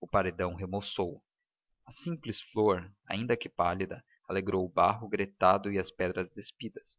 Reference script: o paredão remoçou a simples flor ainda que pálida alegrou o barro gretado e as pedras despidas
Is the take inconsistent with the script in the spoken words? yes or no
no